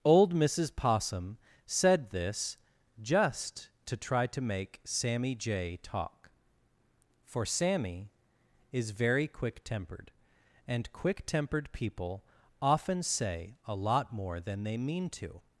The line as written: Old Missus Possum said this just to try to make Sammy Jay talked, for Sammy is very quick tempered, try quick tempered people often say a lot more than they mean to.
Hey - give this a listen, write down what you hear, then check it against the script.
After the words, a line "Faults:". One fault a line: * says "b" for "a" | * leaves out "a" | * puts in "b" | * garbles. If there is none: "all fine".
Old Missus Possum said this just to try to make Sammy Jay talk, for Sammy is very quick tempered, and quick tempered people often say a lot more than they mean to.
Faults:
* says "talk" for "talked"
* says "and" for "try"